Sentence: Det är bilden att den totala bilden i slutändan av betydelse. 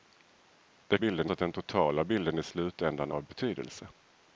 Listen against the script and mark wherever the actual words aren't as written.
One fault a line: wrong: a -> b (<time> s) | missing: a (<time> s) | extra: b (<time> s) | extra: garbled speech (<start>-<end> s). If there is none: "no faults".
no faults